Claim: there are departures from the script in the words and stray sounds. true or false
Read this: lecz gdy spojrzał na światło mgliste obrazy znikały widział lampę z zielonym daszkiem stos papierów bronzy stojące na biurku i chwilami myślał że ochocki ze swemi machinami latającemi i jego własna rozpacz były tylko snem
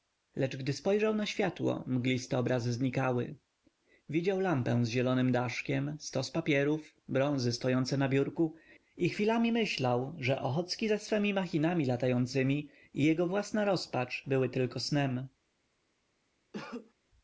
true